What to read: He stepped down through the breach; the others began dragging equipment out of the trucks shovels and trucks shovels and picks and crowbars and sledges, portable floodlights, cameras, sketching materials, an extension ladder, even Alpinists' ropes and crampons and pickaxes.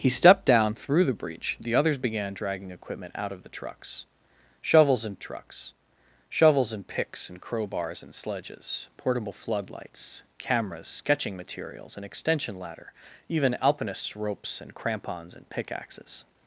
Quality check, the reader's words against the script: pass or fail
pass